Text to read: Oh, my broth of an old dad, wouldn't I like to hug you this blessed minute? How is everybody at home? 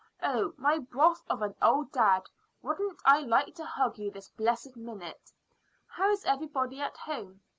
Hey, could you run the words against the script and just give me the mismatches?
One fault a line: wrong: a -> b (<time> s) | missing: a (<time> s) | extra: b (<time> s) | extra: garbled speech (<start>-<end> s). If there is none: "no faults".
no faults